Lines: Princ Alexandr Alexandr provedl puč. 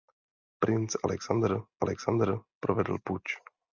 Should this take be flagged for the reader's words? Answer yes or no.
no